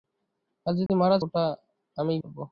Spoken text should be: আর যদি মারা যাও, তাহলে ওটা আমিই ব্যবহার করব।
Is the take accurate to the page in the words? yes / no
no